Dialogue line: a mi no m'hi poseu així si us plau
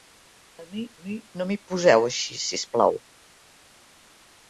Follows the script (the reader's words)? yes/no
no